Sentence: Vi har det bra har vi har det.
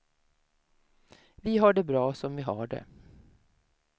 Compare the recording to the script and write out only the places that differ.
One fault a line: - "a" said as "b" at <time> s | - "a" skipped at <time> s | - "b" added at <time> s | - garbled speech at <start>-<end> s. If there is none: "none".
- "har" said as "som" at 2.1 s